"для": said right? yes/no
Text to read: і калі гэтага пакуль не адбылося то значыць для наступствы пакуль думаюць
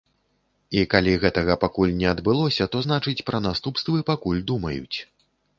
no